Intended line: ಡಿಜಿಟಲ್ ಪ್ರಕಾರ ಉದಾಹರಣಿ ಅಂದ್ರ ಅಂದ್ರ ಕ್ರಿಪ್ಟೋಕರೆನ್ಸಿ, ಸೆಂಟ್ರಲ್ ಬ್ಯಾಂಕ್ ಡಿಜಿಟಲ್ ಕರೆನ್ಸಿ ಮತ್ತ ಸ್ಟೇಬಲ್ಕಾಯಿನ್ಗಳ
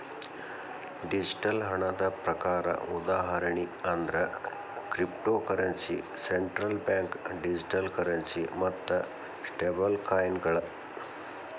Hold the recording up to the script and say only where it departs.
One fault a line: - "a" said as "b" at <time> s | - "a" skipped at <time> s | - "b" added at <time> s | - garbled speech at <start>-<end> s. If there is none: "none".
- "ಹಣದ" added at 1.6 s
- "ಅಂದ್ರ" skipped at 4.2 s